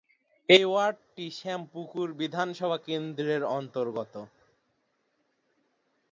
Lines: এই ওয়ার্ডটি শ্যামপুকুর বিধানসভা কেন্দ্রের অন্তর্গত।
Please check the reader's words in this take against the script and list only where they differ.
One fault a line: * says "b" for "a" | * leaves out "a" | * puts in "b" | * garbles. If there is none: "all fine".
all fine